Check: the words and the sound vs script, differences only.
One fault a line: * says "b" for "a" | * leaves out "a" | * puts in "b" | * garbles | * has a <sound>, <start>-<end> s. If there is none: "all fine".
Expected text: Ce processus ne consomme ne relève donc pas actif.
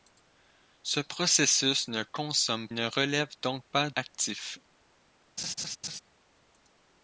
* has a laugh, 5.4-6.0 s